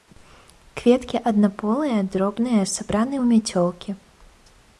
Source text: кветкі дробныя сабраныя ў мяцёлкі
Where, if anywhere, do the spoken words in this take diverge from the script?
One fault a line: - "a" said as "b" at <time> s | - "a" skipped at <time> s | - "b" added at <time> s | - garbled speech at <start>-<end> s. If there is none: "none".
- "аднаполыя" added at 1.3 s